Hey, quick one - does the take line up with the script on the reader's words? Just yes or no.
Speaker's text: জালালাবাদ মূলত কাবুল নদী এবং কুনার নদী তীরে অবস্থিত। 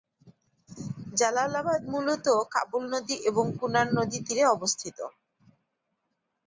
yes